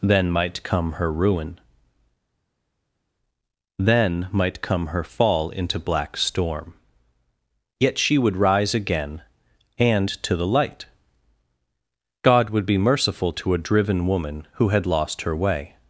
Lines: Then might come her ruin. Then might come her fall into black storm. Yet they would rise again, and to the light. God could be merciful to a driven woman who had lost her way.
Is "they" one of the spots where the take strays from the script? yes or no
yes